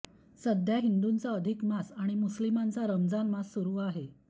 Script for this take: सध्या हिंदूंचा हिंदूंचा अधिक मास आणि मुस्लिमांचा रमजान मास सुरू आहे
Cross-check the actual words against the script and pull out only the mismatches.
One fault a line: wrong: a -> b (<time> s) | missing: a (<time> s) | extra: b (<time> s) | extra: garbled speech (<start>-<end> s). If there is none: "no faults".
missing: हिंदूंचा (1.3 s)